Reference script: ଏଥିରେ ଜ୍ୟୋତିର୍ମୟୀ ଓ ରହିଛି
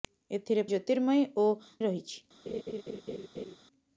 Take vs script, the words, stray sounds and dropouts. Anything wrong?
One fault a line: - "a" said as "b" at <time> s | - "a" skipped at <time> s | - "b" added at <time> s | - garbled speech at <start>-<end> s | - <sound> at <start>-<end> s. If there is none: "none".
- laugh at 2.5-3.6 s